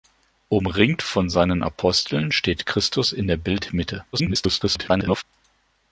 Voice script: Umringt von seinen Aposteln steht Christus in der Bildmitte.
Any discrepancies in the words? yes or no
yes